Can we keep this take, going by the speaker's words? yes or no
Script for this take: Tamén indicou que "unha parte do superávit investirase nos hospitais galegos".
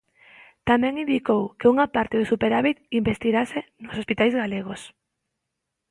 yes